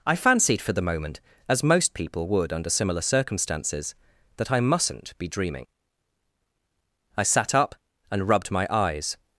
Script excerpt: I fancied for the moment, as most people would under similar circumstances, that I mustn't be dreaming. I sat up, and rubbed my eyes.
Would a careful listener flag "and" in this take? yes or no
no